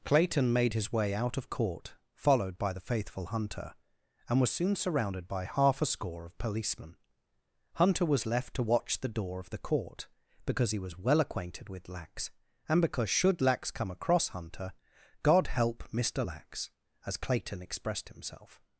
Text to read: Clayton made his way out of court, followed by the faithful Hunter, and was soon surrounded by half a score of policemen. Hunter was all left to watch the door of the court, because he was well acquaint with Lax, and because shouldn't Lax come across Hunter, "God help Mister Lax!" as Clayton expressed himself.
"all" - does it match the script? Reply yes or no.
no